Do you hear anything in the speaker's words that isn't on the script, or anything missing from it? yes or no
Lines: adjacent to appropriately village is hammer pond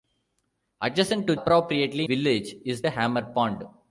no